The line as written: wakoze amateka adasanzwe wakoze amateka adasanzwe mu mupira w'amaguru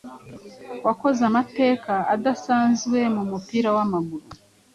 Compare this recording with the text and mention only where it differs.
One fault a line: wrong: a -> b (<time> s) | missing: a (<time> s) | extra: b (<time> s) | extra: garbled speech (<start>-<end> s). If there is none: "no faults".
missing: wakoze amateka adasanzwe (3.0 s)